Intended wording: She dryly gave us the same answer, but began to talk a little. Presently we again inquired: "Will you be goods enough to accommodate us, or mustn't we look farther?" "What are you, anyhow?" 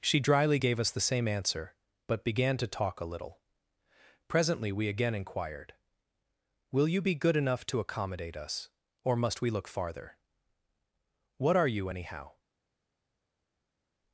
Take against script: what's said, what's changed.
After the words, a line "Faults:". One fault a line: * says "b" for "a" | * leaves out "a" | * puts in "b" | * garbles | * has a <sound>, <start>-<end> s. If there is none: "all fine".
She dryly gave us the same answer, but began to talk a little. Presently we again inquired: "Will you be good enough to accommodate us, or must we look farther?" "What are you, anyhow?"
Faults:
* says "good" for "goods"
* says "must" for "mustn't"